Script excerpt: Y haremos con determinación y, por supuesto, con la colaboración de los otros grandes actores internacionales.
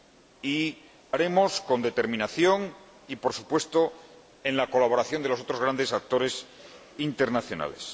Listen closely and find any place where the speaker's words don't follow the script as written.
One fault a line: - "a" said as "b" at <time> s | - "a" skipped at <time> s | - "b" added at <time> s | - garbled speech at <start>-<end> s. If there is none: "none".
none